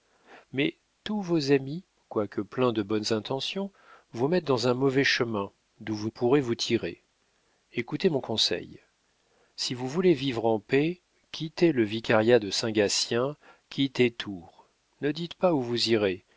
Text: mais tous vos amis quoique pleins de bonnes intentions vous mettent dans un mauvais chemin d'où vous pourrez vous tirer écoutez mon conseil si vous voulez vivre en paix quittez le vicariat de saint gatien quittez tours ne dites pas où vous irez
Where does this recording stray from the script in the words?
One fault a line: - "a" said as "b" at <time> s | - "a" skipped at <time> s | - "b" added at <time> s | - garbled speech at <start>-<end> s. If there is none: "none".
none